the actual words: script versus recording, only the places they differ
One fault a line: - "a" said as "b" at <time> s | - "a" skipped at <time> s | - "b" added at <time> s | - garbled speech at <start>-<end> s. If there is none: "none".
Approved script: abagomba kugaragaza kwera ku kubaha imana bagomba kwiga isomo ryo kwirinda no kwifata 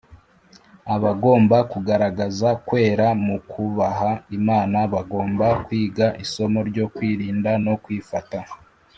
- "ku" said as "mu" at 3.2 s